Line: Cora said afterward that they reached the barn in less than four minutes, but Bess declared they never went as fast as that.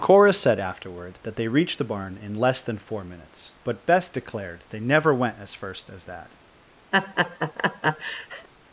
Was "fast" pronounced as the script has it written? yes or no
no